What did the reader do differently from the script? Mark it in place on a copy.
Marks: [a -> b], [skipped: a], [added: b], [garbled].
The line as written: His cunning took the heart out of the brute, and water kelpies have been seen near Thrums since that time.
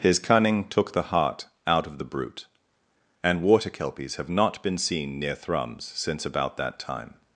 His cunning took the heart out of the brute, and water kelpies have [added: not] been seen near Thrums since [added: about] that time.